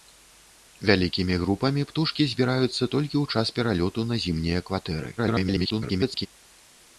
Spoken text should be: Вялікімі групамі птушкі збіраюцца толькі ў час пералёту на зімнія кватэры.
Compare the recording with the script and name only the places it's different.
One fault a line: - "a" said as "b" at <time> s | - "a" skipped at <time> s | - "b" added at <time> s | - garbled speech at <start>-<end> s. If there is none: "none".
- garbled speech at 5.2-6.3 s